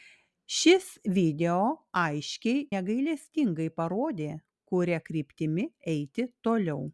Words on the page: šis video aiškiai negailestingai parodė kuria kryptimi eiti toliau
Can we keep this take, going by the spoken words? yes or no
yes